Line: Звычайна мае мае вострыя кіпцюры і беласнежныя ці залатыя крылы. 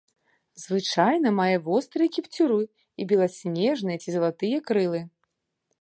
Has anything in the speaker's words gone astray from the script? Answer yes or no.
yes